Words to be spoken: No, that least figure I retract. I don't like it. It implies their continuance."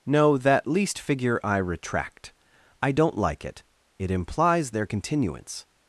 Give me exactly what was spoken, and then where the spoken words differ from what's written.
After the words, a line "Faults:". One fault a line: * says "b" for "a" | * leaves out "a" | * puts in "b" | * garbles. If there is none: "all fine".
No, that least figure I retract. I don't like it. It implies their continuance."
Faults:
all fine